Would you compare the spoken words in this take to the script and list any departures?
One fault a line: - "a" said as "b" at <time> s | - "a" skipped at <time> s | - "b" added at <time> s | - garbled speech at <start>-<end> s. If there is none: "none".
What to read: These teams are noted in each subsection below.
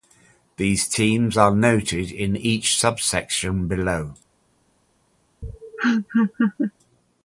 none